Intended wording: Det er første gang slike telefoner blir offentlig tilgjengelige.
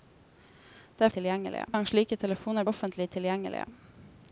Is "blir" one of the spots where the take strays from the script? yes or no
yes